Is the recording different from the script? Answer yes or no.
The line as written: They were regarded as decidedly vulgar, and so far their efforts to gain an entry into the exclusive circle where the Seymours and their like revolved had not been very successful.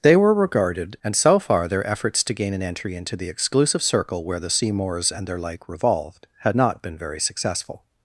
yes